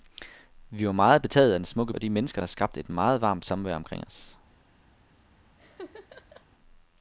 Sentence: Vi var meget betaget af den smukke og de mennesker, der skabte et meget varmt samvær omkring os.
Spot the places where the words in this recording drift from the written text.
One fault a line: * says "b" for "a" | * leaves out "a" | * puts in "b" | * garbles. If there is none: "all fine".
all fine